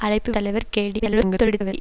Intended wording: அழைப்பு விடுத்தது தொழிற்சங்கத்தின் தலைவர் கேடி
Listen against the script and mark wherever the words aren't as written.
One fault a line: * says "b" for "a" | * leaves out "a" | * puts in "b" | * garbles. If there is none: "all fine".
* leaves out "விடுத்தது தொழிற்சங்கத்தின்"
* garbles